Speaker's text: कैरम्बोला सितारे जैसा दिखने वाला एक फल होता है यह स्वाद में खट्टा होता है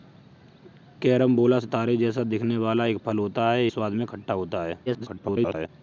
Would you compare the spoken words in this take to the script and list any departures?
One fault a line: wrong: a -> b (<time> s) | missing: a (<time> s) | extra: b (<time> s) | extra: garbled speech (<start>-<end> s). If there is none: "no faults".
missing: यह (3.7 s)
extra: garbled speech (4.9-5.7 s)